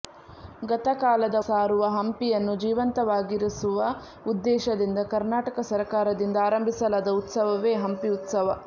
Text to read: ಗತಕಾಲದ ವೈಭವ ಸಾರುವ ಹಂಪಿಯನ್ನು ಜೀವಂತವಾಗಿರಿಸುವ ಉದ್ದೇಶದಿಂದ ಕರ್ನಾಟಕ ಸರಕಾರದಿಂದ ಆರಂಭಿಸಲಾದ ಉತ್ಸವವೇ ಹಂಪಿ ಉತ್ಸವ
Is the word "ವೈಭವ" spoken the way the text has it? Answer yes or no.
no